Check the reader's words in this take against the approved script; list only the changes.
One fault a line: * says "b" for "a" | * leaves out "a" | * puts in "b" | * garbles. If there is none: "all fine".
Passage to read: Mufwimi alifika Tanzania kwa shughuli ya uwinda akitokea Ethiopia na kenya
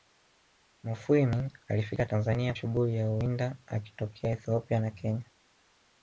* leaves out "kwa"